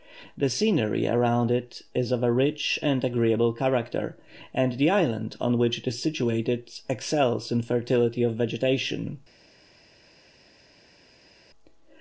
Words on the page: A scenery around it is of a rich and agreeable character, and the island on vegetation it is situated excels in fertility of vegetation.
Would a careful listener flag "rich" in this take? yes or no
no